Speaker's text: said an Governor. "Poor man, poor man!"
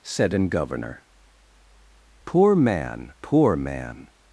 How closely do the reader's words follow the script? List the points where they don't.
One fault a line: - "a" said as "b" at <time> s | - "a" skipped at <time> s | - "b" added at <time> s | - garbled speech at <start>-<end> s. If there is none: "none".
none